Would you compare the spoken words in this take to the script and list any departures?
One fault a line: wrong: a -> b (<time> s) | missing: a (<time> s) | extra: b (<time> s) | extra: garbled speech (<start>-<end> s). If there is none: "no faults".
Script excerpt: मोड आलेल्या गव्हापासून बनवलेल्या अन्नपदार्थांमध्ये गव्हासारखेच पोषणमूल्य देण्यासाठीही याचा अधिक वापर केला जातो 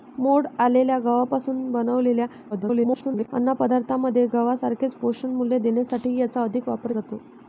extra: garbled speech (2.5-3.3 s)
missing: केला (6.9 s)